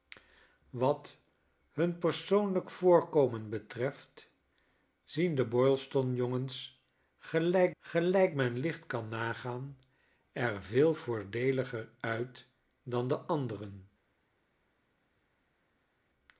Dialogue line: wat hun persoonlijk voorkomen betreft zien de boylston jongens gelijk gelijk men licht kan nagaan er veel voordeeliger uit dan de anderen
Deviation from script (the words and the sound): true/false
false